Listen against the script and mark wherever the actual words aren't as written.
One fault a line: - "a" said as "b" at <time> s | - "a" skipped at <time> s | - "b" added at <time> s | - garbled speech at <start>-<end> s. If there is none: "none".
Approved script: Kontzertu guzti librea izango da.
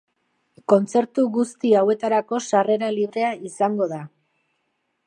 - "hauetarako sarrera" added at 1.8 s